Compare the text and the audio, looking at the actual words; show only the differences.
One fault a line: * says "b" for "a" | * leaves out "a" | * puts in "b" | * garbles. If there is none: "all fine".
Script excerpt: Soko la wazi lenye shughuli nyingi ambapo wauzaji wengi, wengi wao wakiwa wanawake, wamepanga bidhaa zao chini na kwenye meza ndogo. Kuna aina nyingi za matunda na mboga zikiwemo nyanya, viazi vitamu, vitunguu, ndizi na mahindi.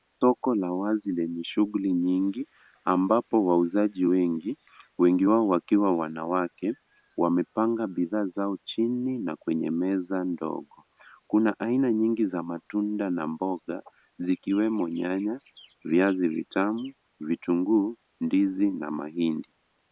all fine